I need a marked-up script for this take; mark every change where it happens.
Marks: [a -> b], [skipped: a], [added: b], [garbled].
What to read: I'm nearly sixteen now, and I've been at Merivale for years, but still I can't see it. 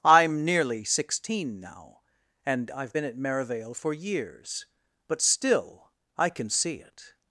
I'm nearly sixteen now, and I've been at Merivale for years, but still I [can't -> can] see it.